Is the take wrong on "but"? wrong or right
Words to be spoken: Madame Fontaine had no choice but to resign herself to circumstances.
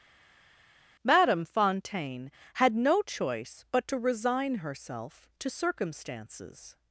right